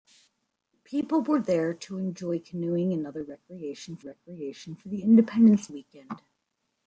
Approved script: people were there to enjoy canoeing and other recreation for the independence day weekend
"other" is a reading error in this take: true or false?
false